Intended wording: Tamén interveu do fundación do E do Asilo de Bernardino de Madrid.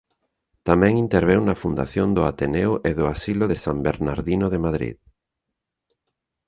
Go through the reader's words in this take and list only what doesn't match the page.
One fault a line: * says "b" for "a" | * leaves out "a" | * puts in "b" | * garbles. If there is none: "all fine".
* says "na" for "do"
* puts in "Ateneo"
* puts in "San"